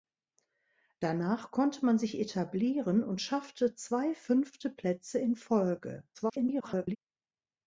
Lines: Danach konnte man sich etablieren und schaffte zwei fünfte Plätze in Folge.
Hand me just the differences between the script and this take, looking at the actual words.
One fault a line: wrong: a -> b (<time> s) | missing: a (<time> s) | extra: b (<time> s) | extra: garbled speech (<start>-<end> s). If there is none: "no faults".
extra: garbled speech (6.1-7.0 s)